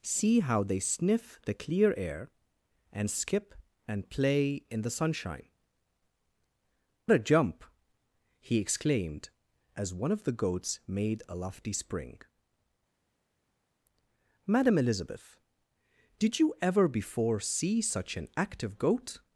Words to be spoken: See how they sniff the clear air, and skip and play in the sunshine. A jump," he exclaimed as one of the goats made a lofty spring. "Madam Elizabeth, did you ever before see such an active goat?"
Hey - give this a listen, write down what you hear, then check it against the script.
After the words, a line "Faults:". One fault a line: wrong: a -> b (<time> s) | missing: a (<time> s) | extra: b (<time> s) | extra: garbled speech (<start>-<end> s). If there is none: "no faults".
See how they sniff the clear air, and skip and play in the sunshine. A jump," he exclaimed as one of the goats made a lofty spring. "Madam Elizabeth, did you ever before see such an active goat?"
Faults:
no faults